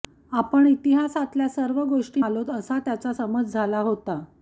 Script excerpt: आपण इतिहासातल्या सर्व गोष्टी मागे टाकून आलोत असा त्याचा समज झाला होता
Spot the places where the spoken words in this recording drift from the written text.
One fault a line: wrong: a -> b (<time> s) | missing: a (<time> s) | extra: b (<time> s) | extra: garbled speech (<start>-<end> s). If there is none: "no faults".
missing: मागे टाकून (2.2 s)